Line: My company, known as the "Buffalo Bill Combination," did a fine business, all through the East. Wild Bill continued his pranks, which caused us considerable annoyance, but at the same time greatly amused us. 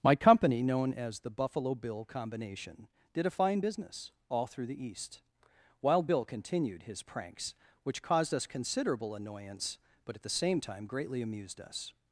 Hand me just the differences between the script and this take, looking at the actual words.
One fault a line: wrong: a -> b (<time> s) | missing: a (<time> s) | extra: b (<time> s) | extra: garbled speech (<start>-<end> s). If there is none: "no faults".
no faults